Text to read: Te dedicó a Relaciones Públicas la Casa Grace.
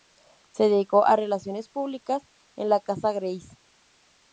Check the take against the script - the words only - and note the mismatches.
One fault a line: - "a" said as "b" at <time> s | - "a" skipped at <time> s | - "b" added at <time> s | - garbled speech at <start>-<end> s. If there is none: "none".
- "Te" said as "Se" at 0.5 s
- "en" added at 2.5 s